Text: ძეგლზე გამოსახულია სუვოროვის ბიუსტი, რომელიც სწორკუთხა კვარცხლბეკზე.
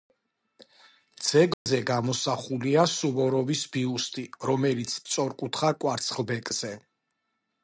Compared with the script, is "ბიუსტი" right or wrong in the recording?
right